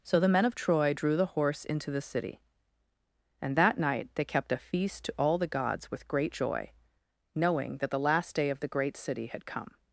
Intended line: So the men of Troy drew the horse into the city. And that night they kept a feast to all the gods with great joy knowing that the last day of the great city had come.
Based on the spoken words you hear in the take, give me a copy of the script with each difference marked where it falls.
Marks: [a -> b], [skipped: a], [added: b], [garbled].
So the men of Troy drew the horse into the city. And that night they kept a feast to all the gods with great joy knowing that the last day of the great city had come.